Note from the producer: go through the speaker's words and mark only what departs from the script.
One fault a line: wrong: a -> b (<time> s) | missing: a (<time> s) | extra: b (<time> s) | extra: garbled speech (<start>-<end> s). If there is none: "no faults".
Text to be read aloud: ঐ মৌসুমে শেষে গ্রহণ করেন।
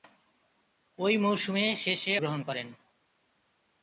no faults